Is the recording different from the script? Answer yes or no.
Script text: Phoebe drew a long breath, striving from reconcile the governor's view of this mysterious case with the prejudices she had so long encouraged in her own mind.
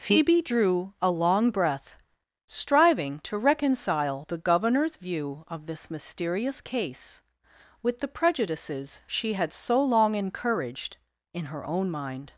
yes